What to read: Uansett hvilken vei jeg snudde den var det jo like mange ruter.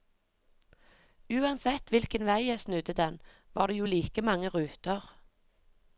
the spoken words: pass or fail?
pass